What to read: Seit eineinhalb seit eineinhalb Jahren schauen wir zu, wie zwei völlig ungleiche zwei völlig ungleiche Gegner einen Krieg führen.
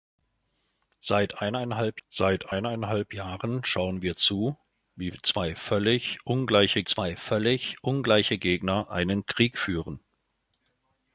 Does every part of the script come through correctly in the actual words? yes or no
yes